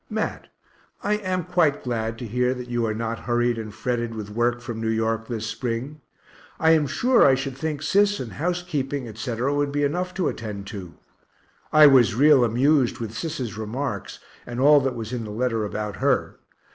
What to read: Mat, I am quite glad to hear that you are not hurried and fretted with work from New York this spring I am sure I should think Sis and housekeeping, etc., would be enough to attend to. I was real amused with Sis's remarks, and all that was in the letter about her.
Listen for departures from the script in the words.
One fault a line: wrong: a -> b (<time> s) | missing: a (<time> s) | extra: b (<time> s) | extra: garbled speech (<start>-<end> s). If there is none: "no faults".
no faults